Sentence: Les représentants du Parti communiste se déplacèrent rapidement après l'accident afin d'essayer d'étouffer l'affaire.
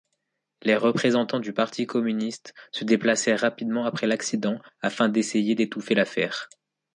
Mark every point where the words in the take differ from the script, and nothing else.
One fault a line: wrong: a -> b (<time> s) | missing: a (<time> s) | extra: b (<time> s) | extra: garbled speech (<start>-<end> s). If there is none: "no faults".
no faults